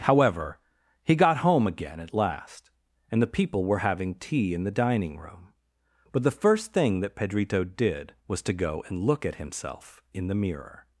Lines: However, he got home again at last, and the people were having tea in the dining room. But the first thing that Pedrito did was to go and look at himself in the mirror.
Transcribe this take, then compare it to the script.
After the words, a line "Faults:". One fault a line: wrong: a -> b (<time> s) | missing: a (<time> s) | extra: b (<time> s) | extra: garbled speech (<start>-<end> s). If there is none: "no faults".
However, he got home again at last, and the people were having tea in the dining room. But the first thing that Pedrito did was to go and look at himself in the mirror.
Faults:
no faults